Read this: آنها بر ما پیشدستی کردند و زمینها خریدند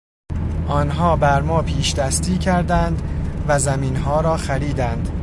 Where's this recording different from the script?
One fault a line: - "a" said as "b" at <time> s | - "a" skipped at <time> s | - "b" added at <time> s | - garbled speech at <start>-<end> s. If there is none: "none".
- "را" added at 4.2 s